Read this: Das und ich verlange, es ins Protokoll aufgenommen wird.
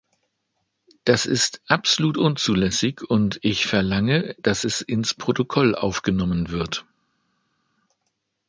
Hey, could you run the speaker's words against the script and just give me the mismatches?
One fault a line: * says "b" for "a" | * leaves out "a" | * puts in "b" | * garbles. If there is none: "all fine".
* puts in "ist absolut unzulässig"
* puts in "dass"